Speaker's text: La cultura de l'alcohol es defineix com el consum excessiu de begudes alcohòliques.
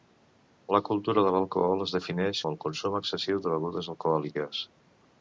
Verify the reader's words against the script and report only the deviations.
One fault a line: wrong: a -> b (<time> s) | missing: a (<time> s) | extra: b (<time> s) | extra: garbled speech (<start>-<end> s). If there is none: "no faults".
missing: com (2.4 s)